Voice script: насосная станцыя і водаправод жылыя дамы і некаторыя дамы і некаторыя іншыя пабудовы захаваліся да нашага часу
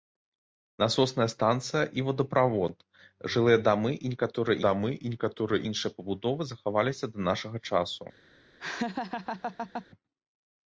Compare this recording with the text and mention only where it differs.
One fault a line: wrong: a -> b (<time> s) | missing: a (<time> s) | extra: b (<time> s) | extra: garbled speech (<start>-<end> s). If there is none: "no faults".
no faults